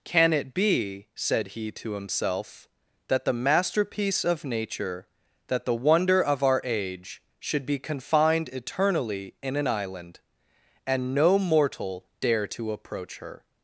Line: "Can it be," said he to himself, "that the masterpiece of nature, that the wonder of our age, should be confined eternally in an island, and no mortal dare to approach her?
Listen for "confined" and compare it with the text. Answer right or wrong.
right